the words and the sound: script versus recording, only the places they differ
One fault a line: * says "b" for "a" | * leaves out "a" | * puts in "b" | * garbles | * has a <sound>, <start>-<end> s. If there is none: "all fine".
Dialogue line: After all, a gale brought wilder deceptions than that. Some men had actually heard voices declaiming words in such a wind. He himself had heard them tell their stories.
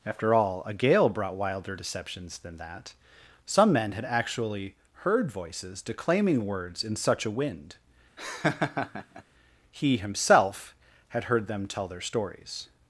* has a laugh, 8.2-9.2 s